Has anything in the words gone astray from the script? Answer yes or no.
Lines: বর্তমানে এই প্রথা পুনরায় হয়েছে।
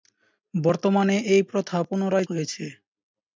no